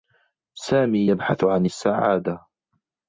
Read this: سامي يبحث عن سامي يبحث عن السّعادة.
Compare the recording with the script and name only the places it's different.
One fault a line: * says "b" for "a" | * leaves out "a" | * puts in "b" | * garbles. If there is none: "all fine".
* leaves out "سامي يبحث عن"